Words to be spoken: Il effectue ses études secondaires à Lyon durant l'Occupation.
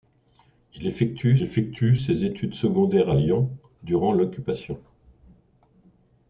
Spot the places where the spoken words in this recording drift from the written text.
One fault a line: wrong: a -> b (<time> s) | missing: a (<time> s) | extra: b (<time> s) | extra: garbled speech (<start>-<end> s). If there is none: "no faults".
extra: effectue (1.4 s)